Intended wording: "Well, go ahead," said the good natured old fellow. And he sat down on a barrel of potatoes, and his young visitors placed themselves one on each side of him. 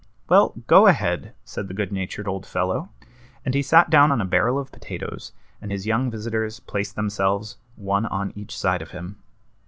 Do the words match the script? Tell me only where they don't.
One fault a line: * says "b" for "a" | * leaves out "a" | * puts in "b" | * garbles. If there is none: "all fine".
all fine